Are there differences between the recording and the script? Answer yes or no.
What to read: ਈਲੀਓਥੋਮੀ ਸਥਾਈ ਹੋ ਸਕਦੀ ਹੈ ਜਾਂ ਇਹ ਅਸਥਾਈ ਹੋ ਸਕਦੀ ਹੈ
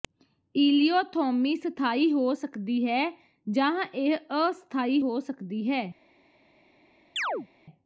no